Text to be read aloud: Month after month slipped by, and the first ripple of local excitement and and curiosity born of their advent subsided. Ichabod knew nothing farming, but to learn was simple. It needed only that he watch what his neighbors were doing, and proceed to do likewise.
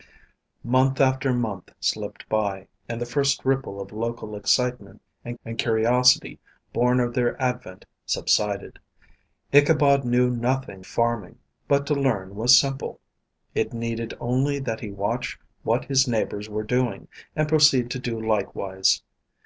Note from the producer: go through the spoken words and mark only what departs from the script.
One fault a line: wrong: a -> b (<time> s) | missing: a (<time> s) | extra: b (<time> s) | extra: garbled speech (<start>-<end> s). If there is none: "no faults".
no faults